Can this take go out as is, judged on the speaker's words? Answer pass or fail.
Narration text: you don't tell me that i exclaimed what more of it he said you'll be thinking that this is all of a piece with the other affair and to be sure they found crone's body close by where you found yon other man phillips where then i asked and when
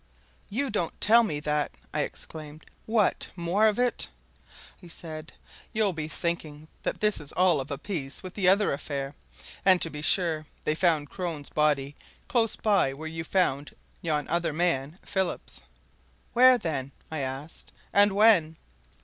pass